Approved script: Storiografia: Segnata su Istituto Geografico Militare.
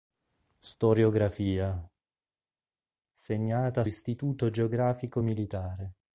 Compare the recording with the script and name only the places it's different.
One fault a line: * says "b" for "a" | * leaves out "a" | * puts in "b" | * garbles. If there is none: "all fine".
* leaves out "su"